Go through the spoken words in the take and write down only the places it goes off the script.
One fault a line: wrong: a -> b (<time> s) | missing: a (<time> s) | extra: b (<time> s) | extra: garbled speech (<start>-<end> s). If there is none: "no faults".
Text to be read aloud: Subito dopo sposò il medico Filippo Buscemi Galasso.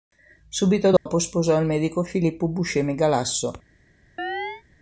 no faults